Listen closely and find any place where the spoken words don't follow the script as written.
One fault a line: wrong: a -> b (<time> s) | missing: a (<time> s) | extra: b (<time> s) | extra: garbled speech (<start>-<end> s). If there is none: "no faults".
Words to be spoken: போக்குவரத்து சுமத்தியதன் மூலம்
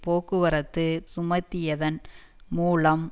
no faults